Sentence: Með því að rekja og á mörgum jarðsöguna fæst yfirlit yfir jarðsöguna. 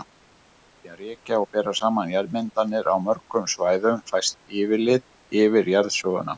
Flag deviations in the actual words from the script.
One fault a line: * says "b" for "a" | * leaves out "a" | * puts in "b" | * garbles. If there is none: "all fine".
* puts in "bera saman jarðmyndanir"
* says "svæðum" for "jarðsöguna"